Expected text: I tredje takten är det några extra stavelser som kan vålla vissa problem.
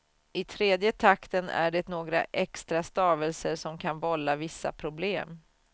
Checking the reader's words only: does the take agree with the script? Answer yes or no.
yes